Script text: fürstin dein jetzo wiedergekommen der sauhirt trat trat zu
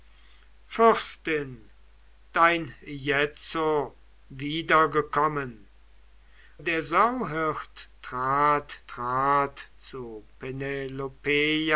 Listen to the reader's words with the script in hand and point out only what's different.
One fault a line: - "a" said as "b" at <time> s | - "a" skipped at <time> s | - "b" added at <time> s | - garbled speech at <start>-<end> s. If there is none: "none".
none